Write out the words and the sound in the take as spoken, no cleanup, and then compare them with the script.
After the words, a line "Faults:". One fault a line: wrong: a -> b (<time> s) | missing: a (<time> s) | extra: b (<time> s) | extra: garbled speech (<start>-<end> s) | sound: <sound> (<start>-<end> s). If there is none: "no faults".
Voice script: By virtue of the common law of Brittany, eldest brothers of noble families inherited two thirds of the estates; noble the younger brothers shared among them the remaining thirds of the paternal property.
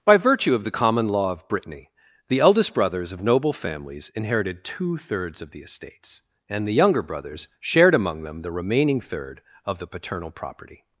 By virtue of the common law of Brittany, the eldest brothers of noble families inherited two thirds of the estates; and the younger brothers shared among them the remaining third of the paternal property.
Faults:
extra: the (2.3 s)
wrong: noble -> and (6.5 s)
wrong: thirds -> third (9.0 s)